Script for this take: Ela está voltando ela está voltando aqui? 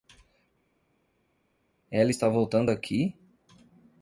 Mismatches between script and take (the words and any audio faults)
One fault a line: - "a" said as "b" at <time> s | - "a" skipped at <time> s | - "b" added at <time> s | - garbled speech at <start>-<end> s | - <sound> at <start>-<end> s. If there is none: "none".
- "ela está voltando" skipped at 2.7 s